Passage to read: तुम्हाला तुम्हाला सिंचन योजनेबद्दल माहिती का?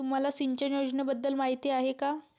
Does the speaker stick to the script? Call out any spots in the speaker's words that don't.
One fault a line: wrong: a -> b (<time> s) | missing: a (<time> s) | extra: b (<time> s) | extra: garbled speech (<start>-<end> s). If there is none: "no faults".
missing: तुम्हाला (0.3 s)
extra: आहे (1.7 s)